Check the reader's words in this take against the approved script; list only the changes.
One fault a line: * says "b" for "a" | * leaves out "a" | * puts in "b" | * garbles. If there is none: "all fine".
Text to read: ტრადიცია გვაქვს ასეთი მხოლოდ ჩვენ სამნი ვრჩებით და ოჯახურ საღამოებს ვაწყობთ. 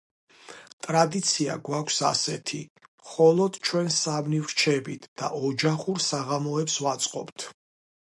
all fine